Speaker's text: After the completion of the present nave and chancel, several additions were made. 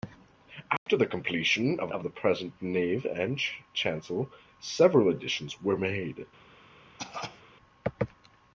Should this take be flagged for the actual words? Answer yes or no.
yes